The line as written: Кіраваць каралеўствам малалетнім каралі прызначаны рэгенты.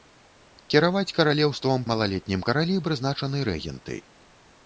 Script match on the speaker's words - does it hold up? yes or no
yes